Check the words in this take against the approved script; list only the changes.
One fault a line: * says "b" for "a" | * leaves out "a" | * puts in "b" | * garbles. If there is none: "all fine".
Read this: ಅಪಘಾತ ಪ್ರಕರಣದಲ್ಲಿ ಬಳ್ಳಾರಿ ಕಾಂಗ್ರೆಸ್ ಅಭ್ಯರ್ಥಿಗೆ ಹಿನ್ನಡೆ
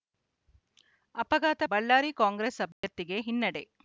* leaves out "ಪ್ರಕರಣದಲ್ಲಿ"